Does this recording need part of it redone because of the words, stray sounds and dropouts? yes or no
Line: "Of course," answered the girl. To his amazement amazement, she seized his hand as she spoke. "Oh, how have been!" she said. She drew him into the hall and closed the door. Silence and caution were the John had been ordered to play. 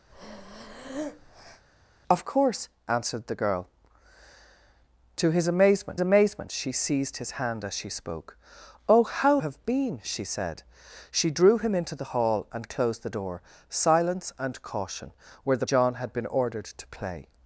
yes